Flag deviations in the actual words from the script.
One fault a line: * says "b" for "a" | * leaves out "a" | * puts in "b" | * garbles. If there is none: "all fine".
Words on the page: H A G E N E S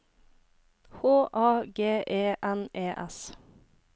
all fine